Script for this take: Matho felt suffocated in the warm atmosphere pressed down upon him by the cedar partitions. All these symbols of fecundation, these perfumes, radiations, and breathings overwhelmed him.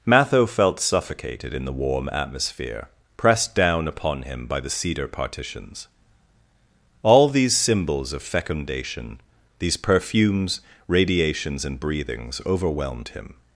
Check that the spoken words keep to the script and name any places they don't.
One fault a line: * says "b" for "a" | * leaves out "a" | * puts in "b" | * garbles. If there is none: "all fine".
all fine